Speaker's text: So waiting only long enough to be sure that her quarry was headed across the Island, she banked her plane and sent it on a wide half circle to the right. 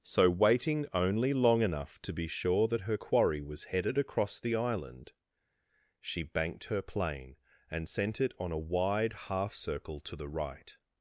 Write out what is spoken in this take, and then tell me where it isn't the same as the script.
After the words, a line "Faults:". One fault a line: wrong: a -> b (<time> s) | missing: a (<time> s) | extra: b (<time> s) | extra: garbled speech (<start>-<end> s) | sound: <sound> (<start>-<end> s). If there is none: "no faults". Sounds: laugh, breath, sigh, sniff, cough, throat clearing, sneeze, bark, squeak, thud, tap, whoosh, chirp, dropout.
So waiting only long enough to be sure that her quarry was headed across the Island, she banked her plane and sent it on a wide half circle to the right.
Faults:
no faults